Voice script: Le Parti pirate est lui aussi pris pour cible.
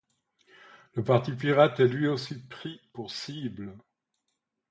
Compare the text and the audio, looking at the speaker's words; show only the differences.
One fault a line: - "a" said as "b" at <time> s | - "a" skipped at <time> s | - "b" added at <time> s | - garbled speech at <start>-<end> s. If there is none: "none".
none